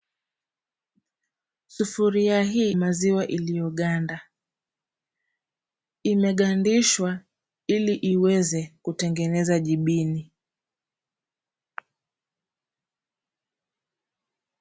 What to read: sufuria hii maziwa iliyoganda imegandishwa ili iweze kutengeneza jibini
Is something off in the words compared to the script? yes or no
no